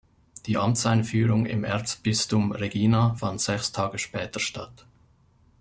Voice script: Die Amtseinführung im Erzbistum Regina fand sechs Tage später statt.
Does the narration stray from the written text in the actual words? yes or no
no